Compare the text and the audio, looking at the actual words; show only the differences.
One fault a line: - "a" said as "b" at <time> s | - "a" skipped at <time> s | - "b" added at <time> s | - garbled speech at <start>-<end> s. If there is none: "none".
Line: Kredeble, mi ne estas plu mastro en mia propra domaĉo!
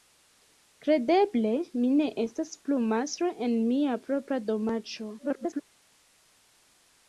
- garbled speech at 5.2-5.6 s